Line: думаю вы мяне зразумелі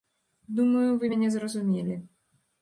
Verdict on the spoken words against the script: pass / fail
pass